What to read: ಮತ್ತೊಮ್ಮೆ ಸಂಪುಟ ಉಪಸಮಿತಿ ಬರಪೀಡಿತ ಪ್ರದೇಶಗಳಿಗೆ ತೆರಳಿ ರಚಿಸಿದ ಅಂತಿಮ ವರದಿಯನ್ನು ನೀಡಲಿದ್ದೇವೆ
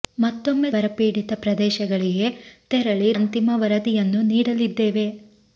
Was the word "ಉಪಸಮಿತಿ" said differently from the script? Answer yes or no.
yes